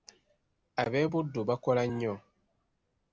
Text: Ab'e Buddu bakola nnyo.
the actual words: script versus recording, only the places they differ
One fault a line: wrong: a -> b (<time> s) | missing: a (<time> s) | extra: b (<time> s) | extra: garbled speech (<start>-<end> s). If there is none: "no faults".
no faults